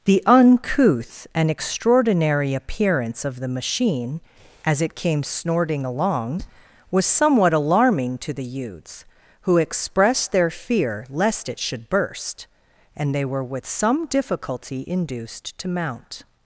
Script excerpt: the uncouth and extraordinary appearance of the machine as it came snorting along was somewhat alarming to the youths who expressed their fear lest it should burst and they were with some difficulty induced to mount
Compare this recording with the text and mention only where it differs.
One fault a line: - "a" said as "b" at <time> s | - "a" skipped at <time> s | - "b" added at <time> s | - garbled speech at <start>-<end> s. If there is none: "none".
none